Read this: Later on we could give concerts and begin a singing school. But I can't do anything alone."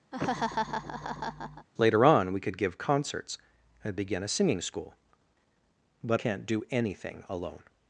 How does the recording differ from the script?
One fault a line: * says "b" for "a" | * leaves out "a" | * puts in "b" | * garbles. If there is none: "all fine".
* leaves out "I"